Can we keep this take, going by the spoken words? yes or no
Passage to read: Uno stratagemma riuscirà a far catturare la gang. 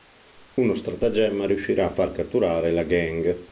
yes